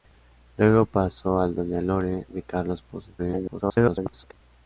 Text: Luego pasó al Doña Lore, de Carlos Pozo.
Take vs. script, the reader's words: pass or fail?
fail